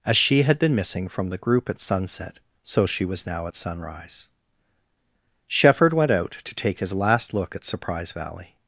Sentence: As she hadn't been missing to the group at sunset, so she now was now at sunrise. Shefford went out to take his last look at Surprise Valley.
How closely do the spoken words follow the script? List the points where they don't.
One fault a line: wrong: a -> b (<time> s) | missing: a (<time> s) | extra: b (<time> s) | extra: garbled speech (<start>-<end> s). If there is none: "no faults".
wrong: hadn't -> had (0.4 s)
wrong: to -> from (1.1 s)
missing: now (3.0 s)